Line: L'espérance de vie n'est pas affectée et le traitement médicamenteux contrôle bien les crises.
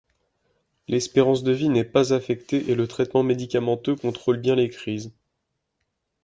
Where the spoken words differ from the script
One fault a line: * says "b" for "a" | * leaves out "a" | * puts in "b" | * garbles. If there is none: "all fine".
all fine